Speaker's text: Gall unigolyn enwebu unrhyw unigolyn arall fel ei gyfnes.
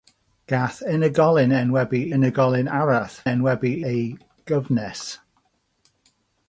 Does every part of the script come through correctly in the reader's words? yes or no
no